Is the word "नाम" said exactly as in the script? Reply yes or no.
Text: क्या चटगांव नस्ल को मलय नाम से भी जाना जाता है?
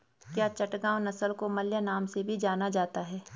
yes